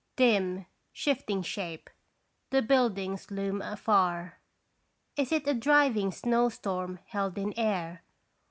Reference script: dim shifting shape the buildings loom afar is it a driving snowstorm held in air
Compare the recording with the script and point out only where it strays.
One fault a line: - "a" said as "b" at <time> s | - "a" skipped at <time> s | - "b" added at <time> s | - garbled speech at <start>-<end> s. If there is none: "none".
none